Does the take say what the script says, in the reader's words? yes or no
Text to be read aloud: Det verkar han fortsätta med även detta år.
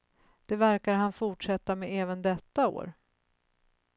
yes